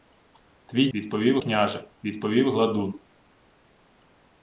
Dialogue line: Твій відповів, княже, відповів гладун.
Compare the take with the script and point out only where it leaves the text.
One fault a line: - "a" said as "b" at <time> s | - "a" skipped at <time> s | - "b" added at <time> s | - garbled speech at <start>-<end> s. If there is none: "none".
none